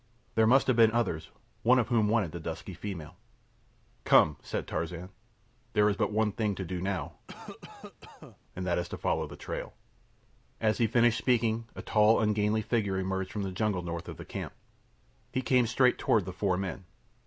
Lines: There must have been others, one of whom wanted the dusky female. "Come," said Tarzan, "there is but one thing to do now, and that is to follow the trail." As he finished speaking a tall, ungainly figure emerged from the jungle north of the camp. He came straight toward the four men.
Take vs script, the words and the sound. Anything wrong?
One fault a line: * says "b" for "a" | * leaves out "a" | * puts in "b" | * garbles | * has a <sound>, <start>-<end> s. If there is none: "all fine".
* has a cough, 7.3-8.4 s